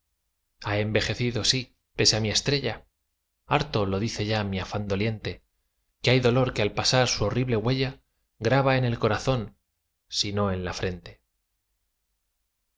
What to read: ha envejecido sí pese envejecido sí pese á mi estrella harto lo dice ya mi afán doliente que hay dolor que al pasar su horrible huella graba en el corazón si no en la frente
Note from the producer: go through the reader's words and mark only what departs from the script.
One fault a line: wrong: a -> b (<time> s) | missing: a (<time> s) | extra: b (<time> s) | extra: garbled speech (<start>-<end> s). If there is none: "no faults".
missing: envejecido sí pese (2.1 s)